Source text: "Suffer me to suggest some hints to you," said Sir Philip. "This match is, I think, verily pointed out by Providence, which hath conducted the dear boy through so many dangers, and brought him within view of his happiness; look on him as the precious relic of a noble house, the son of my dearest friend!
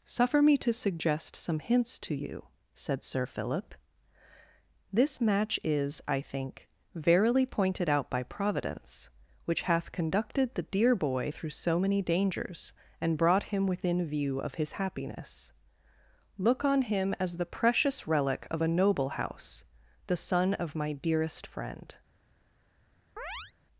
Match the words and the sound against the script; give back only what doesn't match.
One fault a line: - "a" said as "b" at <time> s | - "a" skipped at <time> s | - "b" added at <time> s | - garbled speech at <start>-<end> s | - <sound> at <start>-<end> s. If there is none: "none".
- chirp at 23.2-23.5 s